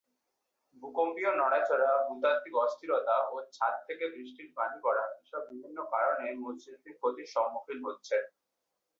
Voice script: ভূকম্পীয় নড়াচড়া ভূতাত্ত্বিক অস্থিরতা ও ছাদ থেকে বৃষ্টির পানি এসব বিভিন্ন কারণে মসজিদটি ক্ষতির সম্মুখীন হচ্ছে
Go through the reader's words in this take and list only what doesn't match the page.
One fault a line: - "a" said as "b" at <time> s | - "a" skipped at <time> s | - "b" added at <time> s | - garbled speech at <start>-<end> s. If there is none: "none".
- "পড়া" added at 4.8 s